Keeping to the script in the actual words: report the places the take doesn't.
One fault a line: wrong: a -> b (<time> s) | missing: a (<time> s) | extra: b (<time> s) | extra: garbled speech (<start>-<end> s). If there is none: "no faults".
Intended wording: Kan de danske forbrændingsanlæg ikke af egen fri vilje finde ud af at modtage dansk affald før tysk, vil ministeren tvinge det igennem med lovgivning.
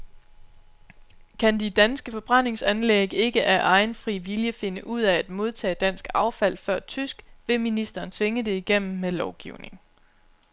no faults